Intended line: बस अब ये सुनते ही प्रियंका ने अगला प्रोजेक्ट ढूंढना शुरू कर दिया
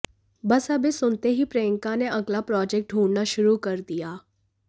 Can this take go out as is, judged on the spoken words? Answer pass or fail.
pass